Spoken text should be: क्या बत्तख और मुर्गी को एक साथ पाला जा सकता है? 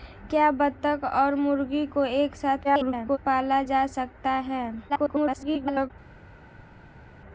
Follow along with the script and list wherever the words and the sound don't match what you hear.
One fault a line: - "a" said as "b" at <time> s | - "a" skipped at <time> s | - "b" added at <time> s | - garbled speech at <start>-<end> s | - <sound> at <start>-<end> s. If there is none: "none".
- garbled speech at 2.6-3.2 s
- garbled speech at 4.9-5.9 s